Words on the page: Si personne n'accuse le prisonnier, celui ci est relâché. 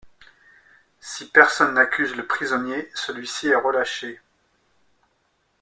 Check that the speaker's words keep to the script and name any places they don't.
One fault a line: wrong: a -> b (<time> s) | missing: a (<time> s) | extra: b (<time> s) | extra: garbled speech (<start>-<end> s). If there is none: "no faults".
no faults